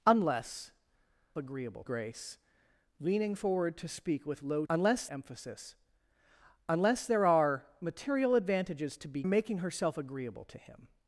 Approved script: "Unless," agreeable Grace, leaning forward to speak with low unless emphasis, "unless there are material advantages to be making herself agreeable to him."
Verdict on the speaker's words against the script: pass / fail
pass